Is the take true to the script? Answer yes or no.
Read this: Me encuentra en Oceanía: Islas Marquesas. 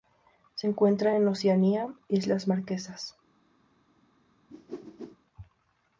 no